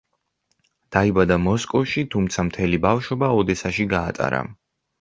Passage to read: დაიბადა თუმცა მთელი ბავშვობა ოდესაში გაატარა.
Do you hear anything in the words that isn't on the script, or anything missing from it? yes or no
yes